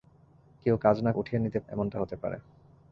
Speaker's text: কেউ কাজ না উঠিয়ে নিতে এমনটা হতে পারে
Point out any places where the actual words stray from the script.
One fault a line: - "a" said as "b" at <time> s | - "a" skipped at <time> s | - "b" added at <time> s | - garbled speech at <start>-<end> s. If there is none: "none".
none